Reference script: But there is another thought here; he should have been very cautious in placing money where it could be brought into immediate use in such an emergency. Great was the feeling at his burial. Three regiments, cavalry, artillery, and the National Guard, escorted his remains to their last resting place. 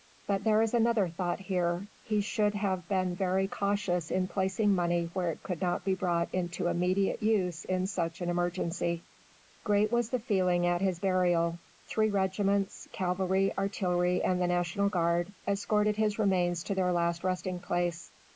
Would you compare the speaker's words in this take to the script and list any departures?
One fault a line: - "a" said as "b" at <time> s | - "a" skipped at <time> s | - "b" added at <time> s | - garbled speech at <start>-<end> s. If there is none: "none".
- "not" added at 5.6 s